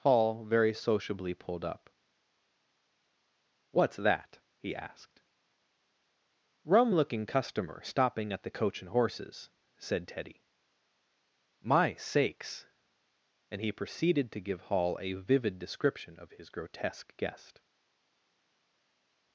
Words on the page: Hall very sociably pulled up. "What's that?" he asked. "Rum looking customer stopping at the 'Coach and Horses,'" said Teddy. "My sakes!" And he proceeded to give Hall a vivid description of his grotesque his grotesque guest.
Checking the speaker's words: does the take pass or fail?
fail